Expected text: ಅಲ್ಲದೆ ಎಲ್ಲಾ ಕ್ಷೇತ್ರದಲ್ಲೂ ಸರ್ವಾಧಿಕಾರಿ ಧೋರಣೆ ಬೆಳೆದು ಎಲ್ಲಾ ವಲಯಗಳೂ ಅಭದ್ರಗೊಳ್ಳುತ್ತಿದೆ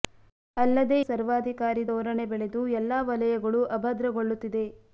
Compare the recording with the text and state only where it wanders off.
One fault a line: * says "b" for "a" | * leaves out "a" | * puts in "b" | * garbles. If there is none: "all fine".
* leaves out "ಎಲ್ಲಾ ಕ್ಷೇತ್ರದಲ್ಲೂ"